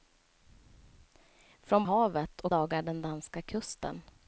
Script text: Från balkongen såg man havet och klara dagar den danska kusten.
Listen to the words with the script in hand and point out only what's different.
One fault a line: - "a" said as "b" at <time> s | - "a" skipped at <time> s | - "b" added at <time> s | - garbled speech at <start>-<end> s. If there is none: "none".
- "balkongen såg man" skipped at 1.8 s
- "klara" skipped at 2.5 s